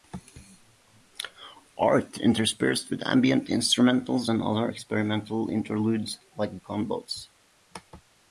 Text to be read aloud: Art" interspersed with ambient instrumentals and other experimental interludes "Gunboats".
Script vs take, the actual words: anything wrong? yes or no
yes